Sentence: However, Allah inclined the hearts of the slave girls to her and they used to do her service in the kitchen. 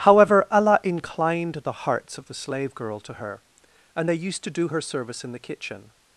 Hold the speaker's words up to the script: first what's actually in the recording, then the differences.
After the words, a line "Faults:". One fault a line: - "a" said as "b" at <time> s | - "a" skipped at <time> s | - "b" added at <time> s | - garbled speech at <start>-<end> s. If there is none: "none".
However, Allah inclined the hearts of the slave girl to her and they used to do her service in the kitchen.
Faults:
- "girls" said as "girl" at 2.7 s